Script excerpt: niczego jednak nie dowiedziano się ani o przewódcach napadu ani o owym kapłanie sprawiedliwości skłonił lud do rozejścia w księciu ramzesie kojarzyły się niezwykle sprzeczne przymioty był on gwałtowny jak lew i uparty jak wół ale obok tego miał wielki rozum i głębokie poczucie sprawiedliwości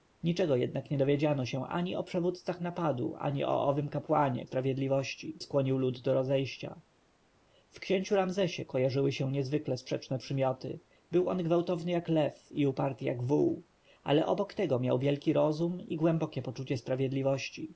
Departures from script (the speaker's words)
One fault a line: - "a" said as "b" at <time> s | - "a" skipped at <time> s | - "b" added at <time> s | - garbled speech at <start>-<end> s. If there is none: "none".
none